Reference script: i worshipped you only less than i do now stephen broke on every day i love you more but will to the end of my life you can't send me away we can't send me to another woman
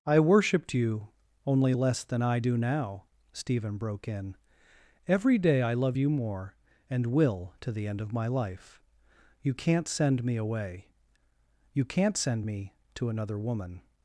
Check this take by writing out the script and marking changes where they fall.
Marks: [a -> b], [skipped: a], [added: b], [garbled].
i worshipped you only less than i do now stephen broke [on -> in] every day i love you more [but -> and] will to the end of my life you can't send me away [we -> you] can't send me to another woman